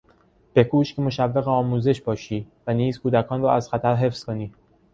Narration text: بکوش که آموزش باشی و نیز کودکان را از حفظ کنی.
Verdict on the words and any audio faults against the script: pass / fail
fail